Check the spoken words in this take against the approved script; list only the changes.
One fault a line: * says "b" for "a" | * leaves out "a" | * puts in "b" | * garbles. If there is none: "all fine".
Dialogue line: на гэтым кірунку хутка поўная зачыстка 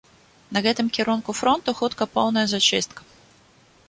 * puts in "фронту"